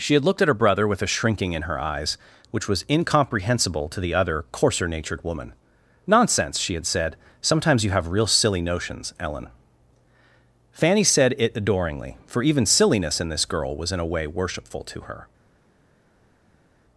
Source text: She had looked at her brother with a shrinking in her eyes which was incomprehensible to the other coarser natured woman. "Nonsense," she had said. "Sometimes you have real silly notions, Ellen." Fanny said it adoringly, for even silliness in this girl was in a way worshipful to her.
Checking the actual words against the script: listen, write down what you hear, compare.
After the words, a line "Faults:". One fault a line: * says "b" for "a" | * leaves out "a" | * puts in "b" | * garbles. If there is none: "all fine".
She had looked at her brother with a shrinking in her eyes which was incomprehensible to the other coarser natured woman. "Nonsense," she had said. "Sometimes you have real silly notions, Ellen." Fanny said it adoringly, for even silliness in this girl was in a way worshipful to her.
Faults:
all fine